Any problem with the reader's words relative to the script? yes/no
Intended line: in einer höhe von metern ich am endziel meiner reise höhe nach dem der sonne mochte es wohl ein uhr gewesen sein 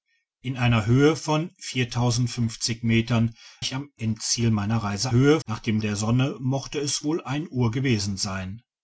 no